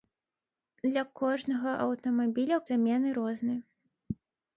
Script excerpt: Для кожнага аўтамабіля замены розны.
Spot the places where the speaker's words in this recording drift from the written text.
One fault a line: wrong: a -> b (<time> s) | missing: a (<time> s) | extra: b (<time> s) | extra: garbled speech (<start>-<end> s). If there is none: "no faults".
no faults